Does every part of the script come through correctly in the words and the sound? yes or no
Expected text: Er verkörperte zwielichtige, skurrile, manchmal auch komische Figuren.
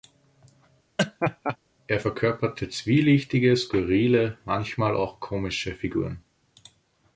no